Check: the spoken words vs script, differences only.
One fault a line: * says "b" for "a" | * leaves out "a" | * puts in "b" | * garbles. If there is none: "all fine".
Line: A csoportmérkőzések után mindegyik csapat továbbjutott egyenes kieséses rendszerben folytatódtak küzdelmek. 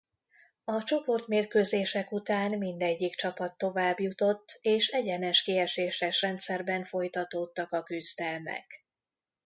* puts in "és"
* puts in "a"